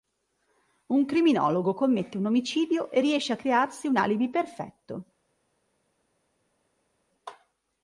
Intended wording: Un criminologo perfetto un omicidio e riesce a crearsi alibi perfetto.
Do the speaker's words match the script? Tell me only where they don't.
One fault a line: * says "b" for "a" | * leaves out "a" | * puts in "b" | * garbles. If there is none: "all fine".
* says "commette" for "perfetto"
* puts in "un"